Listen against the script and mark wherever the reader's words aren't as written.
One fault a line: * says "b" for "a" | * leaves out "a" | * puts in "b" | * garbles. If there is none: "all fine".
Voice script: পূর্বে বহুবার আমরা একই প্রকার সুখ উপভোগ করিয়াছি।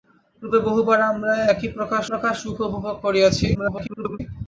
* puts in "প্রকার"
* garbles